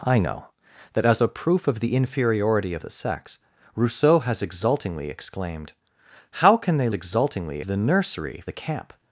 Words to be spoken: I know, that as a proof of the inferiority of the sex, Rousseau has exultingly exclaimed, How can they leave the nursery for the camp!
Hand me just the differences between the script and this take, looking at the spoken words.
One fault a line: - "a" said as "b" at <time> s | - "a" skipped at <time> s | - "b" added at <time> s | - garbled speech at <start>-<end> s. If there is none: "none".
- "leave" said as "exultingly" at 6.9 s
- "for" skipped at 8.4 s